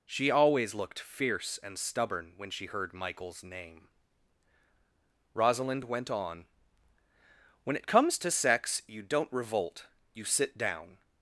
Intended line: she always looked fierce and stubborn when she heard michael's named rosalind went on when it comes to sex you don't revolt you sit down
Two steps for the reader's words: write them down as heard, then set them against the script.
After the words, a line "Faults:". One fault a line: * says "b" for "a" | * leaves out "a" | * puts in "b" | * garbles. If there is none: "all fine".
she always looked fierce and stubborn when she heard michael's name rosalind went on when it comes to sex you don't revolt you sit down
Faults:
* says "name" for "named"